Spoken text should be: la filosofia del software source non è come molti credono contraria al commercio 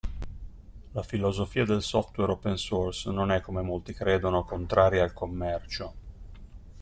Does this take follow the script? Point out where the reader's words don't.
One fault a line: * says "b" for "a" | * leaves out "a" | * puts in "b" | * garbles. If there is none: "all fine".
* puts in "open"